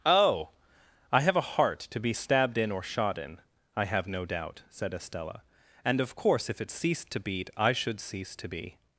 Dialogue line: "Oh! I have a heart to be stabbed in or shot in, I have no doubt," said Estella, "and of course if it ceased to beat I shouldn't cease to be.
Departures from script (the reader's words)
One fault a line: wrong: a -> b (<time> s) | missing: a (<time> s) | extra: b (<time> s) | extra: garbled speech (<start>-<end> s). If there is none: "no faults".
wrong: shouldn't -> should (7.7 s)